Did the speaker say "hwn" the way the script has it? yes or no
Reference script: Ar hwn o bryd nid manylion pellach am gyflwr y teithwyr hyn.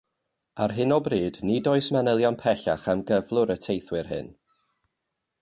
no